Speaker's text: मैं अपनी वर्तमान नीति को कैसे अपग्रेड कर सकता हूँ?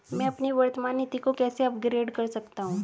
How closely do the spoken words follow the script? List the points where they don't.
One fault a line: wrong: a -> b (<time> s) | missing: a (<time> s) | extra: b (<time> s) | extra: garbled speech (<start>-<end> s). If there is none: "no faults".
no faults